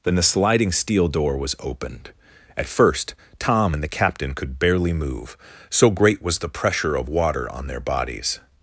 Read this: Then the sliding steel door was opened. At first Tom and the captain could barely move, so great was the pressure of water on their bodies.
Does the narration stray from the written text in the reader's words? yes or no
no